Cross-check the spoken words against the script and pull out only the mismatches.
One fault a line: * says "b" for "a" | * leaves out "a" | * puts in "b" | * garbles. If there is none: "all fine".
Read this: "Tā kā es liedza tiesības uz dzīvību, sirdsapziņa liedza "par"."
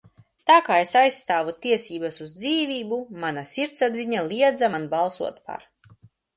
* says "aizstāvu" for "liedza"
* puts in "mana"
* puts in "man balsot"